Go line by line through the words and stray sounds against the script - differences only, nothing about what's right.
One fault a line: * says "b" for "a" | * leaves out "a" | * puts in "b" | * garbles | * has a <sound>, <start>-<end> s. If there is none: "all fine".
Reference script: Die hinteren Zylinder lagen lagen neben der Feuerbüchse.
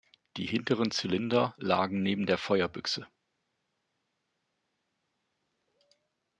* leaves out "lagen"